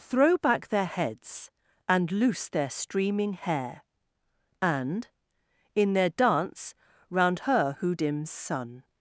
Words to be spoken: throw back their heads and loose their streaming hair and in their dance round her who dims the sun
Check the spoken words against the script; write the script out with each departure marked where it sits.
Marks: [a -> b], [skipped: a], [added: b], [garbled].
throw back their heads and loose their streaming hair and in their dance round her who dims [skipped: the] sun